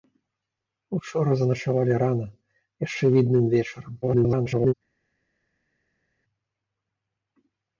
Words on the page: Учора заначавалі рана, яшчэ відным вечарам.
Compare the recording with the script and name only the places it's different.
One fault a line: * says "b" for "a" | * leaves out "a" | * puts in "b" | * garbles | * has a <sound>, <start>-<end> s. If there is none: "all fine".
* garbles